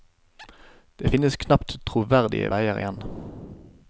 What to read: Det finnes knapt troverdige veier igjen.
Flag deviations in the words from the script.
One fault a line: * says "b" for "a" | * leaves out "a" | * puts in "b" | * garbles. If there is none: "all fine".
all fine